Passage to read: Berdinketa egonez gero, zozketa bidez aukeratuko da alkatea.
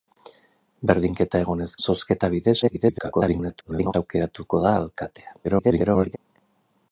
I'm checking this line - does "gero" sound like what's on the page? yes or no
no